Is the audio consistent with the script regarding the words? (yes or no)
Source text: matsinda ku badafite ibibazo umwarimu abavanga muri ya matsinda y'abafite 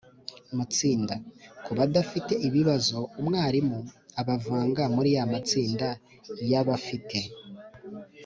yes